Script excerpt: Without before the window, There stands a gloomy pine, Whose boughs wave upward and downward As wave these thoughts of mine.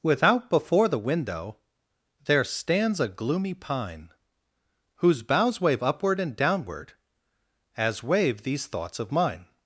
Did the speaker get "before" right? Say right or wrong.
right